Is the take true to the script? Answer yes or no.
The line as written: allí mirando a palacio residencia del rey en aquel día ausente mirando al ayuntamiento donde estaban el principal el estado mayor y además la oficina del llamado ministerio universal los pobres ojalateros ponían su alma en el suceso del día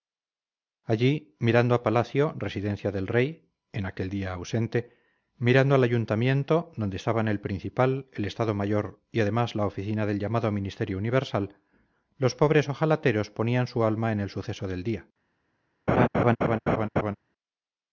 yes